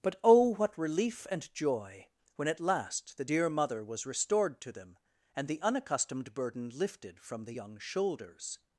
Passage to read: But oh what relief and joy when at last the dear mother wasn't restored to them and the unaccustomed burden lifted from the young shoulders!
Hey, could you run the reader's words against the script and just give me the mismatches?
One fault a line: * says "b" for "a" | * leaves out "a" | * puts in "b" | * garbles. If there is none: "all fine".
* says "was" for "wasn't"